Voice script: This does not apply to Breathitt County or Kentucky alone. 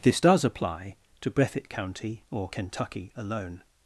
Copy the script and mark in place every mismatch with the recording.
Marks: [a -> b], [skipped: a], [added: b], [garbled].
This does [skipped: not] apply to Breathitt County or Kentucky alone.